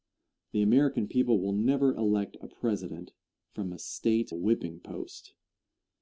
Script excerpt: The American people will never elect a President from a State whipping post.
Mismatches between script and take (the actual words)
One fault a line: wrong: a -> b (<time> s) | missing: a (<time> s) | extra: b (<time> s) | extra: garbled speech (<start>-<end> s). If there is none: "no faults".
no faults